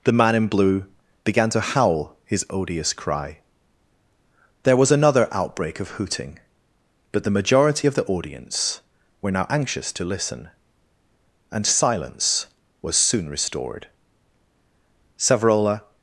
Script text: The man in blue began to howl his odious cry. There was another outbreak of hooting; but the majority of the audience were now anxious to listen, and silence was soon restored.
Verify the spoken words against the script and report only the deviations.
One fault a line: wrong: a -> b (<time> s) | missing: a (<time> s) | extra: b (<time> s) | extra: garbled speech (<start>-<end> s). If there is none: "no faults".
extra: Savrola (15.2 s)